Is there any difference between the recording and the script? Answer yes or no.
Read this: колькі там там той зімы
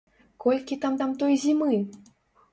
no